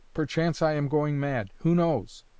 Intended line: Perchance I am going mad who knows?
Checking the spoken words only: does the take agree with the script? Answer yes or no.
yes